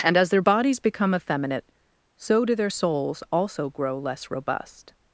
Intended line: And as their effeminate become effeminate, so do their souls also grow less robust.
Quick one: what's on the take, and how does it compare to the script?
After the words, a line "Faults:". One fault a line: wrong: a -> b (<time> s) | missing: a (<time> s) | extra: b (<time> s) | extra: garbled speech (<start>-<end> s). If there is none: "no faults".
And as their bodies become effeminate, so do their souls also grow less robust.
Faults:
wrong: effeminate -> bodies (0.4 s)